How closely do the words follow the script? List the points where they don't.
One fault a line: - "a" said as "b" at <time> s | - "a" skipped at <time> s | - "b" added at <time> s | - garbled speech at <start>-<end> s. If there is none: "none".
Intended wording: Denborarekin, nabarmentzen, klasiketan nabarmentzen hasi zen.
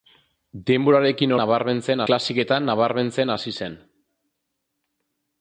none